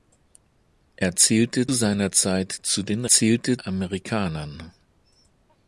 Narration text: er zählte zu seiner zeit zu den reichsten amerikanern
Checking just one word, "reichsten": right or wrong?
wrong